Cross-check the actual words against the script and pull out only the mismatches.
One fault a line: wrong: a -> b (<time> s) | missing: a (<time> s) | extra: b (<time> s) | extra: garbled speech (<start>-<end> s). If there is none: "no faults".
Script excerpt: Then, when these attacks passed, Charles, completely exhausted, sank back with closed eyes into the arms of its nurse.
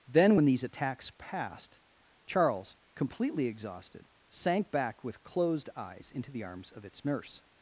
no faults